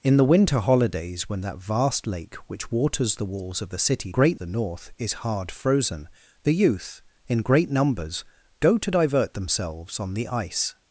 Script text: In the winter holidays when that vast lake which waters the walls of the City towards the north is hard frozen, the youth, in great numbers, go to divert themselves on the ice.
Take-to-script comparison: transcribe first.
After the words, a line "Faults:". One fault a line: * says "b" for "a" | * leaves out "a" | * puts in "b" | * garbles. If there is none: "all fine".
In the winter holidays when that vast lake which waters the walls of the City great the north is hard frozen, the youth, in great numbers, go to divert themselves on the ice.
Faults:
* says "great" for "towards"